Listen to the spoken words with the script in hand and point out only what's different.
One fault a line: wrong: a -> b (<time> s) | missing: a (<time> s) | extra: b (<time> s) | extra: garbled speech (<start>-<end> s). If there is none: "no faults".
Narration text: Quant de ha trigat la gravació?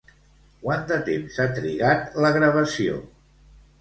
extra: temps (1.1 s)